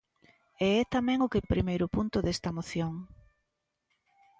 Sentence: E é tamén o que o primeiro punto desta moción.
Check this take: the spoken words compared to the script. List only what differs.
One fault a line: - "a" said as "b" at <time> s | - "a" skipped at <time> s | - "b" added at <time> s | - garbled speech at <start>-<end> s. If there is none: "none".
none